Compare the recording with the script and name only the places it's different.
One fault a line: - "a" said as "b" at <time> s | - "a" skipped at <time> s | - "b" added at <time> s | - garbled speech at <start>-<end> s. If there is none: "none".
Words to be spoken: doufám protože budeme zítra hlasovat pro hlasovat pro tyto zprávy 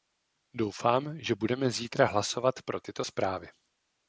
- "protože" said as "že" at 1.2 s
- "hlasovat pro" skipped at 2.8 s